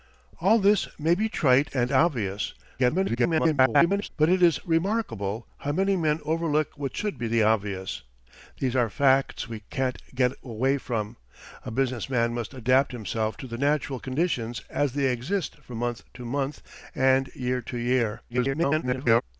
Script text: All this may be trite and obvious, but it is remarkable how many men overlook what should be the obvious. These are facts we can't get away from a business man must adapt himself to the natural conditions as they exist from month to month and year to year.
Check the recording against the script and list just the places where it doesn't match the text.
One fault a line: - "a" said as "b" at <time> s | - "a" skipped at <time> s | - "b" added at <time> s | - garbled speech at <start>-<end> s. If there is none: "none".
- garbled speech at 2.8-4.1 s
- garbled speech at 18.3-19.2 s